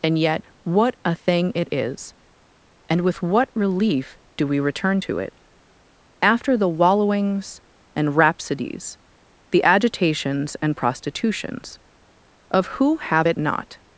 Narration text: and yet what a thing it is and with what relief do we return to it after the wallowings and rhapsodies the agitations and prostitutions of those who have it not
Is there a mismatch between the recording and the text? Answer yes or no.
yes